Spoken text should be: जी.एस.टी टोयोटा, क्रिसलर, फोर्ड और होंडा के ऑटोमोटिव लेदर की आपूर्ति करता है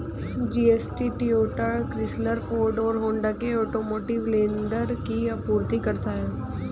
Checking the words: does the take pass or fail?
pass